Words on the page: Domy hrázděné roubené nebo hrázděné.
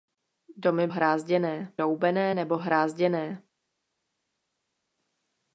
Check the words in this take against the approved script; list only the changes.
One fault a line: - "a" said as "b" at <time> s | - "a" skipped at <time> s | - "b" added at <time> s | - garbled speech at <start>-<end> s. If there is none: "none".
none